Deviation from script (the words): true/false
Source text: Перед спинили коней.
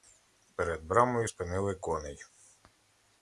true